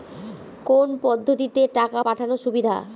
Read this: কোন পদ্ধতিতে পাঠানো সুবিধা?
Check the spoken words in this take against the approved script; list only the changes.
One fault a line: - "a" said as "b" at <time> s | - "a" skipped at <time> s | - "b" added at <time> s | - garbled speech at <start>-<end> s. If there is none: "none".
- "টাকা" added at 1.7 s